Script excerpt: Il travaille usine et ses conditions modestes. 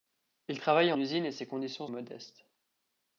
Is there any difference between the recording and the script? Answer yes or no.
no